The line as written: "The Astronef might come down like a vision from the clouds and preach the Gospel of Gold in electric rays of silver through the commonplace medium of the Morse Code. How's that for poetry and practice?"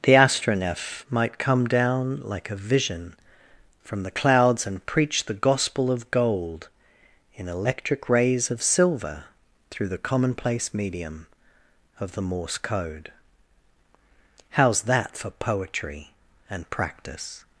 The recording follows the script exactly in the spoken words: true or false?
true